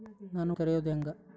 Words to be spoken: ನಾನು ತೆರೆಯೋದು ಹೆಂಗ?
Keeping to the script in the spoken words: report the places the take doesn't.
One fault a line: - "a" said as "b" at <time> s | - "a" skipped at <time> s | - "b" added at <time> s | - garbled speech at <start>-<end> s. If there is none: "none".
none